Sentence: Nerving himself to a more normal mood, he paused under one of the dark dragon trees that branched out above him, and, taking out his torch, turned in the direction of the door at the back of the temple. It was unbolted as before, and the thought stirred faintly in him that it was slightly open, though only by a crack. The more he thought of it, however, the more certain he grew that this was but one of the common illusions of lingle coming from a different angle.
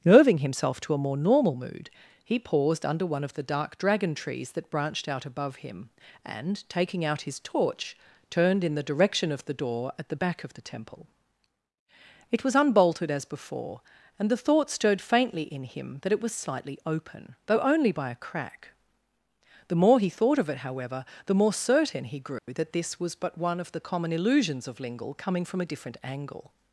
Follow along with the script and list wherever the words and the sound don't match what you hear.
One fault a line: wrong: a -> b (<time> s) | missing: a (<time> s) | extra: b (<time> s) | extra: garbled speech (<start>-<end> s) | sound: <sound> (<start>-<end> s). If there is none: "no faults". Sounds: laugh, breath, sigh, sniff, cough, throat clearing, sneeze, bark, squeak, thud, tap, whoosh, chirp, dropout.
sound: dropout (22.4-22.5 s)